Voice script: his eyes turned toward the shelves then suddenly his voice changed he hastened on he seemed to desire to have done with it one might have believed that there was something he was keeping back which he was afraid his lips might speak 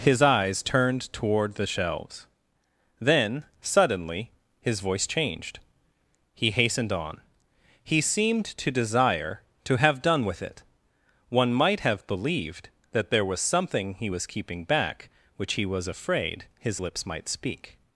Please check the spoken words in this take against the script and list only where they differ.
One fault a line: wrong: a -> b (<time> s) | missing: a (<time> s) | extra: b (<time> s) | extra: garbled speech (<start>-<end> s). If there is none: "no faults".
no faults